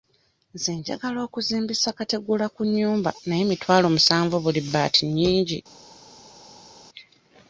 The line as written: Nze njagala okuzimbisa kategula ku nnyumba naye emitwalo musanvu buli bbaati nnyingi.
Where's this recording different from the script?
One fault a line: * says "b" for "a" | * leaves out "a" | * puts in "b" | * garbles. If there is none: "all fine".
all fine